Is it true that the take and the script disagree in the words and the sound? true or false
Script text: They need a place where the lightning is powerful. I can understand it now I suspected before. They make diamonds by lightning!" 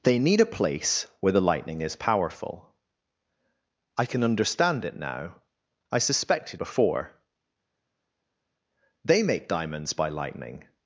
false